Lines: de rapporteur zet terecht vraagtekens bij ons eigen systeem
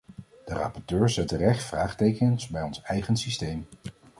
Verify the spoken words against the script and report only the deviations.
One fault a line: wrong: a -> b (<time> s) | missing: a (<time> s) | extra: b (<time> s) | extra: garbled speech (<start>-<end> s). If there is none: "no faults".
no faults